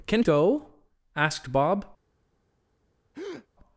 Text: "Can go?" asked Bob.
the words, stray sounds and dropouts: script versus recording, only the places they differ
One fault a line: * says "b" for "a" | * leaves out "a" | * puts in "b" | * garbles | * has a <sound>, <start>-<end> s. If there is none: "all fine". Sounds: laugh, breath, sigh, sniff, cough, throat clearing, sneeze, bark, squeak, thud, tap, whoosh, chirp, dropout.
* has a breath, 3.1-3.5 s